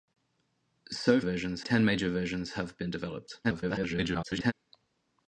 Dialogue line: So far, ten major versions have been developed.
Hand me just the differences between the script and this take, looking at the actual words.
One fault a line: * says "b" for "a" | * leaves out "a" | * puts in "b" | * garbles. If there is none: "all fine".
* says "versions" for "far"
* garbles